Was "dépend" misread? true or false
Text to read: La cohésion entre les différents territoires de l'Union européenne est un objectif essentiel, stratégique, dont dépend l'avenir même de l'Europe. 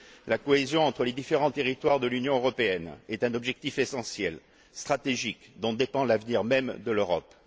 false